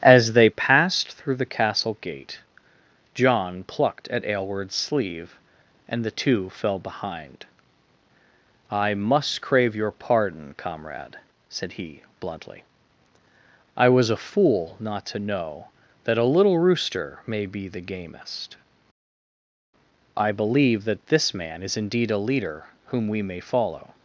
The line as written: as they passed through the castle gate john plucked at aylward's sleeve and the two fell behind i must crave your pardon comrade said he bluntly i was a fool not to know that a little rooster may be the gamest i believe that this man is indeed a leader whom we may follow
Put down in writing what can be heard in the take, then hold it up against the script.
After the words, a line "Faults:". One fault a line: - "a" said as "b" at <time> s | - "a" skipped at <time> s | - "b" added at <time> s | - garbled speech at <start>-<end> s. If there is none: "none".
as they passed through the castle gate john plucked at aylward's sleeve and the two fell behind i must crave your pardon comrade said he bluntly i was a fool not to know that a little rooster may be the gamest i believe that this man is indeed a leader whom we may follow
Faults:
none